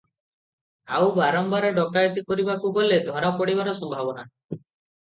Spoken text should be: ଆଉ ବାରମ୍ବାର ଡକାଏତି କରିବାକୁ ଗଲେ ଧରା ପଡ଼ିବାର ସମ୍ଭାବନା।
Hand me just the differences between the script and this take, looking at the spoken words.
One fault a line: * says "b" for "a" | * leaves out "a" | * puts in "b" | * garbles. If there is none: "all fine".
all fine